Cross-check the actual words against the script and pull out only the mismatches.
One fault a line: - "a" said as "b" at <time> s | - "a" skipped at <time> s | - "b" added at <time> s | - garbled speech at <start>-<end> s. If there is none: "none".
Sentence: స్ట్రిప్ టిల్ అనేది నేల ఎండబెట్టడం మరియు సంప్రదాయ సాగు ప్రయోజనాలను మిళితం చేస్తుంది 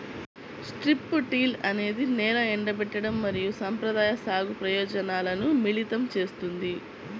none